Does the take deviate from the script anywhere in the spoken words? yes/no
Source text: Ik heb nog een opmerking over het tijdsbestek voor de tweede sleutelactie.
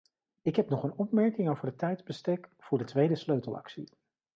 no